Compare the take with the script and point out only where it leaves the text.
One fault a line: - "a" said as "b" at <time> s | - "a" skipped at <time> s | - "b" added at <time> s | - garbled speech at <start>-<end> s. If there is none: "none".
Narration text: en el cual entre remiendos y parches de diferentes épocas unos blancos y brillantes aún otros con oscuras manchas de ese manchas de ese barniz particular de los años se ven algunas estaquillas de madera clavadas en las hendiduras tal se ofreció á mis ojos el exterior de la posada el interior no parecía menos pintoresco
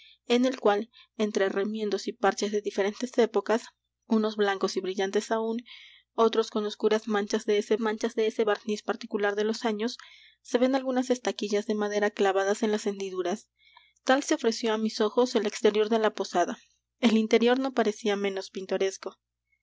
none